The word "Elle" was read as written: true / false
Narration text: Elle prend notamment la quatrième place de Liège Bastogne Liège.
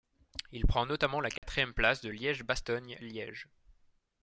false